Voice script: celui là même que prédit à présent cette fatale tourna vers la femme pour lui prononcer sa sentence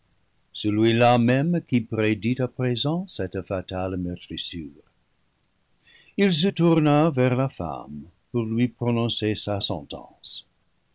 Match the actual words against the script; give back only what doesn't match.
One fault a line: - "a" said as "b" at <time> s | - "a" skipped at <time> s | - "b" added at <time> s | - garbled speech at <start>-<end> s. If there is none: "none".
- "que" said as "qui" at 1.7 s
- "meurtrissure il se" added at 4.0 s